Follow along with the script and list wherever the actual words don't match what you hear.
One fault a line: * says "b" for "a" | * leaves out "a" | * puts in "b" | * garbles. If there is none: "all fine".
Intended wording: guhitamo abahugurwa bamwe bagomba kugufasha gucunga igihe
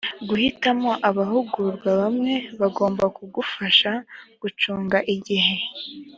all fine